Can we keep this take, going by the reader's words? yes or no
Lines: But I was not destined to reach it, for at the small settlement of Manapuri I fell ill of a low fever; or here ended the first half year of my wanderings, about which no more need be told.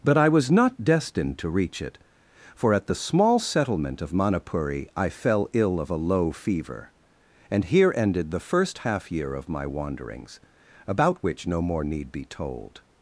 no